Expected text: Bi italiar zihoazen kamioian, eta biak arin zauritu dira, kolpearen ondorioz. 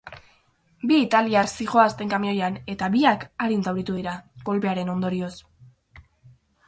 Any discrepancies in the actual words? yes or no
no